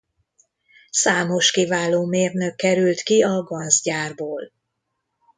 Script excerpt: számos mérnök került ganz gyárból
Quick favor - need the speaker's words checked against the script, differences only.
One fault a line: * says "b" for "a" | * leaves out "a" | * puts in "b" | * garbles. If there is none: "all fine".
* puts in "kiváló"
* puts in "ki a"